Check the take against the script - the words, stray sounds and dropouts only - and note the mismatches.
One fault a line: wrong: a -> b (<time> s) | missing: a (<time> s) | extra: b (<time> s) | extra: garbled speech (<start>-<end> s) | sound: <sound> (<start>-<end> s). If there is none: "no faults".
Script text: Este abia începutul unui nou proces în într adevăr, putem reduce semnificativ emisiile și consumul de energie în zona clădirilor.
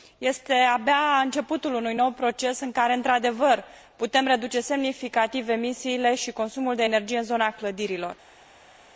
extra: care (2.7 s)